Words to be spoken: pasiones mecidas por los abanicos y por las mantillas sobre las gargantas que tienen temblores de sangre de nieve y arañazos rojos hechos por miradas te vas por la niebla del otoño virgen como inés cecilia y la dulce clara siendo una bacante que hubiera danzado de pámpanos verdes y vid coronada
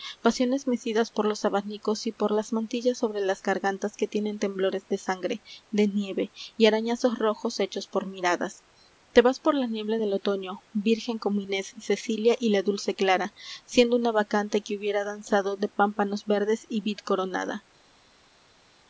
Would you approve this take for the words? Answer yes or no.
yes